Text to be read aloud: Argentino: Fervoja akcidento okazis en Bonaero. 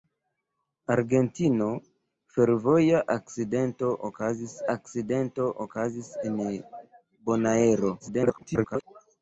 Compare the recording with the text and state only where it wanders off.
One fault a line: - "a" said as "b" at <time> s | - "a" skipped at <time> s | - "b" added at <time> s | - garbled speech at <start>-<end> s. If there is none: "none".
- "akcidento okazis" added at 4.8 s
- garbled speech at 8.0-8.8 s